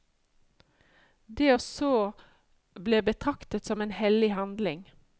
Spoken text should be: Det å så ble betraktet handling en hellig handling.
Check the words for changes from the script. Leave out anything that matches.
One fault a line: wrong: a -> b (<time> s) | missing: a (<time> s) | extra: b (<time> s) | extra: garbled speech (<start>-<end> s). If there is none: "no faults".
wrong: handling -> som (3.6 s)